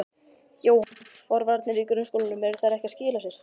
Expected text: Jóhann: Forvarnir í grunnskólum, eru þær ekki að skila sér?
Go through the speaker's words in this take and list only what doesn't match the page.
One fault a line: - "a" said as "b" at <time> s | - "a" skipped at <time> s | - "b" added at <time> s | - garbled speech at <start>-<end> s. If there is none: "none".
none